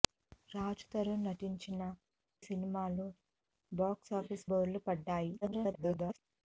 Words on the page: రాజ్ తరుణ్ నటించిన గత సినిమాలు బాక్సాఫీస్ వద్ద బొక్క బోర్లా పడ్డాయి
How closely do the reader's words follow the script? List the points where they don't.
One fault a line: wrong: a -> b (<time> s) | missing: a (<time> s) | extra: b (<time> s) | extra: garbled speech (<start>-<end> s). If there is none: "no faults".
missing: గత (1.8 s)
missing: వద్ద బొక్క (4.5 s)
extra: garbled speech (5.4-6.2 s)